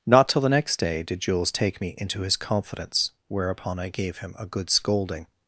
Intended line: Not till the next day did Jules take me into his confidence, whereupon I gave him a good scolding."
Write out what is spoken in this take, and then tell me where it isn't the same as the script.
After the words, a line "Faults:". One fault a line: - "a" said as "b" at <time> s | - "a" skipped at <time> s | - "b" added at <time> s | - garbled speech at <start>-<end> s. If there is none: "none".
Not till the next day did Jules take me into his confidence, whereupon I gave him a good scolding."
Faults:
none